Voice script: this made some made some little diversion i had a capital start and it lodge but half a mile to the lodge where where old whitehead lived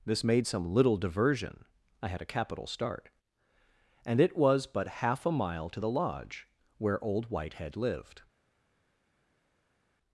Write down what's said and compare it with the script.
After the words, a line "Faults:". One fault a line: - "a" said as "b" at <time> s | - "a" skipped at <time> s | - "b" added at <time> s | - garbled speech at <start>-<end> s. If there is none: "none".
this made some little diversion i had a capital start and it was but half a mile to the lodge where old whitehead lived
Faults:
- "made some" skipped at 0.7 s
- "lodge" said as "was" at 4.3 s
- "where" skipped at 7.0 s